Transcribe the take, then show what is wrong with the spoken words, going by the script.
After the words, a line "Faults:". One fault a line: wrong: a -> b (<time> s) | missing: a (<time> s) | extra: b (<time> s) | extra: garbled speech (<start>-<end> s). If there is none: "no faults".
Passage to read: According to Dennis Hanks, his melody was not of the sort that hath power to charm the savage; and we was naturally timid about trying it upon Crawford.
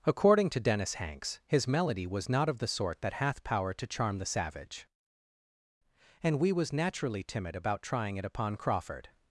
According to Dennis Hanks, his melody was not of the sort that hath power to charm the savage; and we was naturally timid about trying it upon Crawford.
Faults:
no faults